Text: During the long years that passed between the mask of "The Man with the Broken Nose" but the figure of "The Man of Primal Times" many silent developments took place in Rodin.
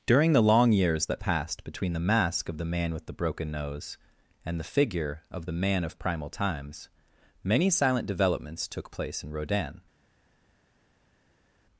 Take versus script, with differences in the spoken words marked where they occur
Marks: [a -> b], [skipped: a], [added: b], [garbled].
During the long years that passed between the mask of "The Man with the Broken Nose" [but -> and] the figure of "The Man of Primal Times" many silent developments took place in Rodin.